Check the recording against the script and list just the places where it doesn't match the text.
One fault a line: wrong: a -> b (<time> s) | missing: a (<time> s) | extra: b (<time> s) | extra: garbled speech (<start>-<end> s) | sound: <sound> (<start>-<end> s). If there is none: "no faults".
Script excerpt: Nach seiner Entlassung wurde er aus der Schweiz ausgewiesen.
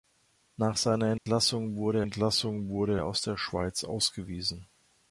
sound: dropout (1.2-1.3 s)
extra: Entlassung wurde (2.0 s)